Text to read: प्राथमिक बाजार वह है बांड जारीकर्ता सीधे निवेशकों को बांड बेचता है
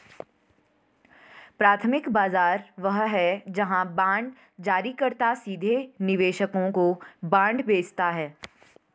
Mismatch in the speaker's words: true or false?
true